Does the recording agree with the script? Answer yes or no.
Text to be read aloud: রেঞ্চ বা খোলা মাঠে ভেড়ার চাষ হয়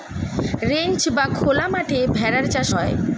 yes